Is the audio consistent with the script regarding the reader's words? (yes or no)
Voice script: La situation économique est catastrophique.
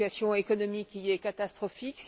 no